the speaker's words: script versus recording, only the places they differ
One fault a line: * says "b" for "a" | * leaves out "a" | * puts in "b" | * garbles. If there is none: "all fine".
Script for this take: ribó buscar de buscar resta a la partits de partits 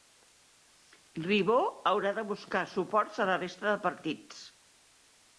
* says "haurà" for "buscar"
* says "suports" for "resta"
* says "resta" for "partits"